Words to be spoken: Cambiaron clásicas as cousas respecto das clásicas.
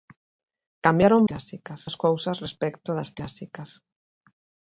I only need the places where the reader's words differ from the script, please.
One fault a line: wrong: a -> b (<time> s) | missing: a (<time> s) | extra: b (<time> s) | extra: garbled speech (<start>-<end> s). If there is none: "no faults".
no faults